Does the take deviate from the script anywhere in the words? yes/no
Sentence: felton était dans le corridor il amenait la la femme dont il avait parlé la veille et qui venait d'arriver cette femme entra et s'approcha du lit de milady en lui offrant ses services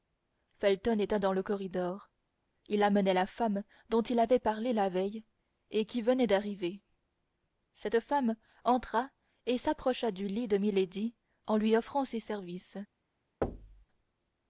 yes